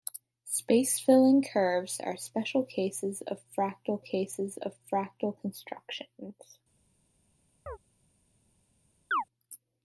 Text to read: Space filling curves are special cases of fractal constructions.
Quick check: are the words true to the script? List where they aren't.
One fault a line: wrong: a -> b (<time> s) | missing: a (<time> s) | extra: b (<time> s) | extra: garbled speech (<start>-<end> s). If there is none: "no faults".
extra: cases of fractal (4.0 s)